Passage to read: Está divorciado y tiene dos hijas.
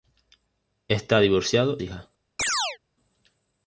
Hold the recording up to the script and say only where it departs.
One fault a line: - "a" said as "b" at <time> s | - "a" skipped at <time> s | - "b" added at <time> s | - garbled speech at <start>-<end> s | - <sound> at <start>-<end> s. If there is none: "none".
- "y tiene dos" skipped at 1.8 s
- chirp at 2.4-2.8 s